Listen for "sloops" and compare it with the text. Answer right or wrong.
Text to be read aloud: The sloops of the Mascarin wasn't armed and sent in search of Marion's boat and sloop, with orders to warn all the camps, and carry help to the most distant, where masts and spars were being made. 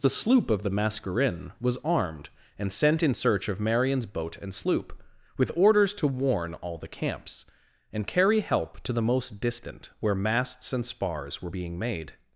wrong